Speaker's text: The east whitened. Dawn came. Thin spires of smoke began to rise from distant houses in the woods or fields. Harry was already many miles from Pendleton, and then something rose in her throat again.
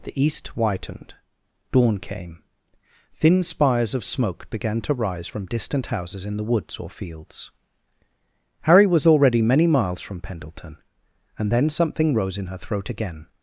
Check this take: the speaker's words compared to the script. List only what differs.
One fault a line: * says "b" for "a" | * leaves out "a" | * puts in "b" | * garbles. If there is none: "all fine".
all fine